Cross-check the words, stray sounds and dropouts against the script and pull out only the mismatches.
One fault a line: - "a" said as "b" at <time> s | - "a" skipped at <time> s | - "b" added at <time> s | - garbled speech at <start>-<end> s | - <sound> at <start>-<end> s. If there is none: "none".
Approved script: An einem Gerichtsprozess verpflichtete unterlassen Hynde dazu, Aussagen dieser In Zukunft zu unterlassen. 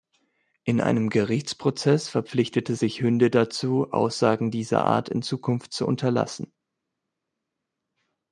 - "An" said as "In" at 0.6 s
- "unterlassen" said as "sich" at 2.7 s
- "Art" added at 4.8 s